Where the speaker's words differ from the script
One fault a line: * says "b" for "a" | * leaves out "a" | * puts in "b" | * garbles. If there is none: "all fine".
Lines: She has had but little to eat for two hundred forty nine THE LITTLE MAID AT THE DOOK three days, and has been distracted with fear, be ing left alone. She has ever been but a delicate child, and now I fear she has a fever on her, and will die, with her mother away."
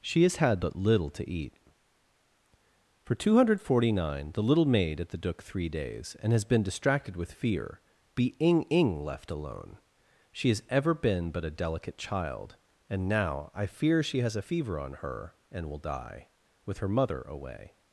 * puts in "ing"